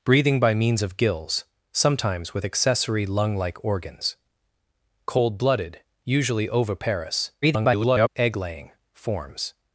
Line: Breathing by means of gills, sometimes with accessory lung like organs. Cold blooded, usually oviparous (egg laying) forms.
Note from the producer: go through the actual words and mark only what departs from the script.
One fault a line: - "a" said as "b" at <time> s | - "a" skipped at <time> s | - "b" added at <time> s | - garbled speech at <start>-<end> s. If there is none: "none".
- garbled speech at 7.4-8.1 s